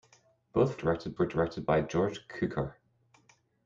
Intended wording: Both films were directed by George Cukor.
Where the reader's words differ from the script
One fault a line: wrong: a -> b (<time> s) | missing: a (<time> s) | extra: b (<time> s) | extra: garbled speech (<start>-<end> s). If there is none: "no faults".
wrong: films -> directed (0.8 s)